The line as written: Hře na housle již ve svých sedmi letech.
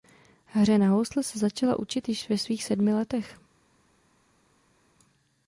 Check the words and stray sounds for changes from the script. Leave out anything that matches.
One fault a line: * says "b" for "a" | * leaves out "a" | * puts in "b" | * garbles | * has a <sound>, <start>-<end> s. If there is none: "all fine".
* puts in "se začala učit"